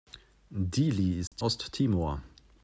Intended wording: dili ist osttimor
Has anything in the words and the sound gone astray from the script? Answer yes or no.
yes